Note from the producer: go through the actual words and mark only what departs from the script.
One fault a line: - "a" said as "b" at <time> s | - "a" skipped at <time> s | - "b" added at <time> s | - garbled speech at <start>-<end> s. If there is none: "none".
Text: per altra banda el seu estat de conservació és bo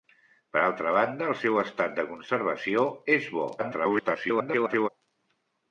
- garbled speech at 3.6-4.9 s